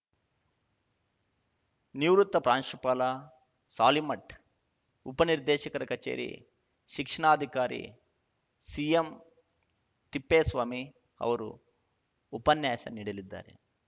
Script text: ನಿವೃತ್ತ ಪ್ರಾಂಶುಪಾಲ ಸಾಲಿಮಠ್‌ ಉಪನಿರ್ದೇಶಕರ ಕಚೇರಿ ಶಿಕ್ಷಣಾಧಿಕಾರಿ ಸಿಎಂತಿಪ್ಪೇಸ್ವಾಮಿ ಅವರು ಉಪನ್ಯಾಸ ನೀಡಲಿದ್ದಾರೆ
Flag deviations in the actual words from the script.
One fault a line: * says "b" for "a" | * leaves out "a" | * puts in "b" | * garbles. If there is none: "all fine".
all fine